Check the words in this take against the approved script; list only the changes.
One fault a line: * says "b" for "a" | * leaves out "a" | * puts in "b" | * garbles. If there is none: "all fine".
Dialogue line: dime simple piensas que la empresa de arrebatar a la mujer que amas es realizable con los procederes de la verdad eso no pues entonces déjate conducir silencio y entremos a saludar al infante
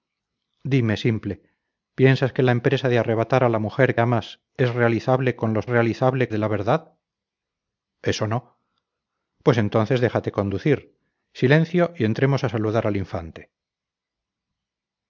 * leaves out "que"
* says "realizable" for "procederes"